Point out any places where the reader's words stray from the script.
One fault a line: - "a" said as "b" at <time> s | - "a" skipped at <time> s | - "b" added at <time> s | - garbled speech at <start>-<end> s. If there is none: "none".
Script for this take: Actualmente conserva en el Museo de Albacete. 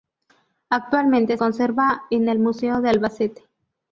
none